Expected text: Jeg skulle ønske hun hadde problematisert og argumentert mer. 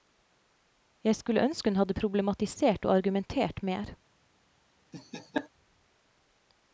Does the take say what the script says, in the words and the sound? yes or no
no